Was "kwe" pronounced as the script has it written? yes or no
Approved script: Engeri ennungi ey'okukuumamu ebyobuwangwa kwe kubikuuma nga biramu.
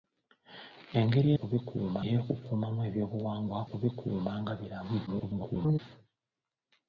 no